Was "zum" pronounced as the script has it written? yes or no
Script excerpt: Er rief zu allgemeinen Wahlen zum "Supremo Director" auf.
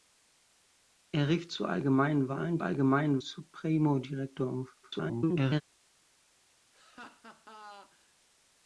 no